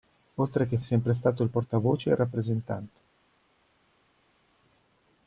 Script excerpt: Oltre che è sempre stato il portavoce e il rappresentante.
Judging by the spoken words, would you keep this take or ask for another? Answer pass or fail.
pass